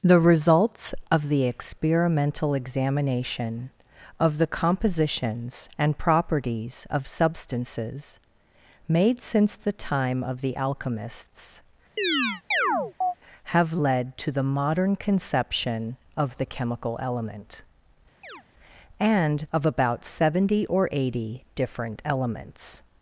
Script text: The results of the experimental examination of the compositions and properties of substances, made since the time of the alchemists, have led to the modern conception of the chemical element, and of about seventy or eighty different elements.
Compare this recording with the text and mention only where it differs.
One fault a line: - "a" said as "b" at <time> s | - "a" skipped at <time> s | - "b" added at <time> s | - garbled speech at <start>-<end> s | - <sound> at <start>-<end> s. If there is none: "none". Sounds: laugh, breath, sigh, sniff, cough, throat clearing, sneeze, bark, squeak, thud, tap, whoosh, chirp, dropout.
- chirp at 12.0-13.1 s
- chirp at 18.2-18.4 s